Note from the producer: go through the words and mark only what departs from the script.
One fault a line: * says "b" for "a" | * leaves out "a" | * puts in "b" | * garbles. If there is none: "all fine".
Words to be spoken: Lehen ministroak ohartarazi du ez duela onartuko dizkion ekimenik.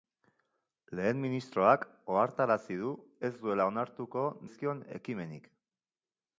all fine